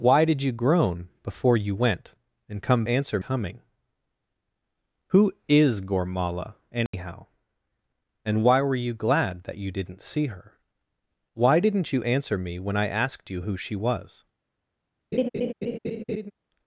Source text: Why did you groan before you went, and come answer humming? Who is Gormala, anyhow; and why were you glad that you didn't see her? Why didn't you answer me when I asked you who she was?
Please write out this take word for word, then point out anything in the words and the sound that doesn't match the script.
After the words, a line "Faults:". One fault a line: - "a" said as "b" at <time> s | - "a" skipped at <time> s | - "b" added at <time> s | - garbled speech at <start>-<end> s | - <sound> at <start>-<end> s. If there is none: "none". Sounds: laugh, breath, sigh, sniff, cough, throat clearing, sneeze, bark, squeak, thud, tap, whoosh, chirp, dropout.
Why did you groan before you went, and come answer humming? Who is Gormala, anyhow; and why were you glad that you didn't see her? Why didn't you answer me when I asked you who she was?
Faults:
- dropout at 6.9-6.9 s
- laugh at 15.1-16.3 s